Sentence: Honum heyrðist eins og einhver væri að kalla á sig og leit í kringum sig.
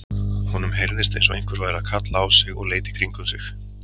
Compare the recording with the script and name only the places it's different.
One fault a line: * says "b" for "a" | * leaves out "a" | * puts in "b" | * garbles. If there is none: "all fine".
all fine